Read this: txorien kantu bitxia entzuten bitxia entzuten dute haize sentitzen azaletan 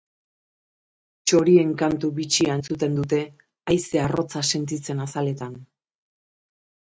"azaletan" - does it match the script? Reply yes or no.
yes